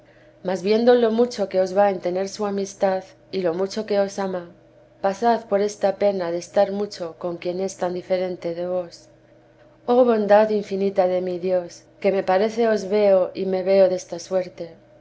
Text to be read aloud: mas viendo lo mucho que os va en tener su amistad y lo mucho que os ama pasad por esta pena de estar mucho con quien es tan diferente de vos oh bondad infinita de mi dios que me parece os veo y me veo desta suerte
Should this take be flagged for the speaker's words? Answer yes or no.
no